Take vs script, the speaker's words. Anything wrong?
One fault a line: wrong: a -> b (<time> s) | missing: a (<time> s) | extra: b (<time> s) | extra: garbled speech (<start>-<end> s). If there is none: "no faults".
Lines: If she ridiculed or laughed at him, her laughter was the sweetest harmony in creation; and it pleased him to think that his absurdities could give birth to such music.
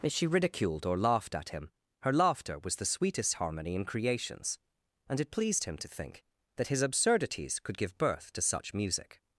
wrong: creation -> creations (3.8 s)